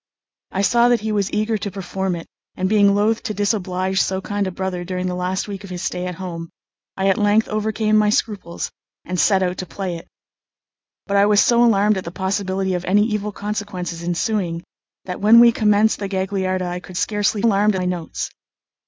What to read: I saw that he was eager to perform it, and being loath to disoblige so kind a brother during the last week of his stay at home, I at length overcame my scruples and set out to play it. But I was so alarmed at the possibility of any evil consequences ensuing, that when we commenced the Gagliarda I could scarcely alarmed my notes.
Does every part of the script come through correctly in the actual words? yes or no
yes